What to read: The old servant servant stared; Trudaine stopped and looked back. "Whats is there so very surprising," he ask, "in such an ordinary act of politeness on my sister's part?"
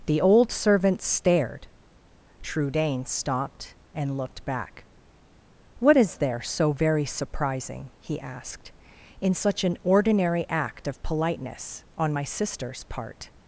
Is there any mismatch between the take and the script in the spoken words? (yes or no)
yes